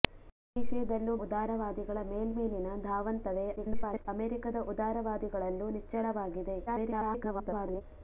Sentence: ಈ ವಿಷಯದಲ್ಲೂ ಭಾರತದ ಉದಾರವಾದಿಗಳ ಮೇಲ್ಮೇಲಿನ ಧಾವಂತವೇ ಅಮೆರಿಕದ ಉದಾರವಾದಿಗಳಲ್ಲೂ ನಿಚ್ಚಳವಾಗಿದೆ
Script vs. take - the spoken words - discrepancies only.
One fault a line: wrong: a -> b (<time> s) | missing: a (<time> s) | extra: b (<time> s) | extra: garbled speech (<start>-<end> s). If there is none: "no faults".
missing: ಭಾರತದ (1.1 s)
extra: garbled speech (3.6-4.1 s)
extra: garbled speech (6.7-7.8 s)